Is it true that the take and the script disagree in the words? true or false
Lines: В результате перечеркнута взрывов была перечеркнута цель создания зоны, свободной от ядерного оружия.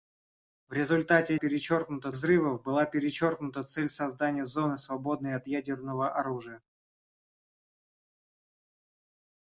false